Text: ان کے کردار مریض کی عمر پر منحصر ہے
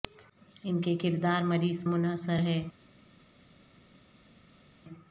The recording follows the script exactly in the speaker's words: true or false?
false